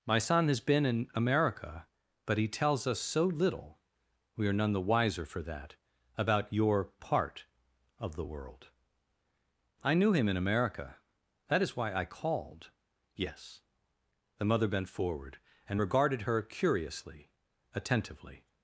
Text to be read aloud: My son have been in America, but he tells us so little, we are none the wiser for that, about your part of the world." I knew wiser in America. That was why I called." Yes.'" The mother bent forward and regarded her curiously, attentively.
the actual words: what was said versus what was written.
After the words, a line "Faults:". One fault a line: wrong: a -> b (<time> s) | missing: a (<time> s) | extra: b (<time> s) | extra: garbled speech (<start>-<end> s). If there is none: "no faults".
My son has been in America, but he tells us so little, we are none the wiser for that, about your part of the world." I knew him in America. That is why I called." Yes.'" The mother bent forward and regarded her curiously, attentively.
Faults:
wrong: have -> has (0.5 s)
wrong: wiser -> him (10.1 s)
wrong: was -> is (11.6 s)